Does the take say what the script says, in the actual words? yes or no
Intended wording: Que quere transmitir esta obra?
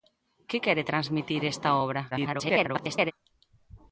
no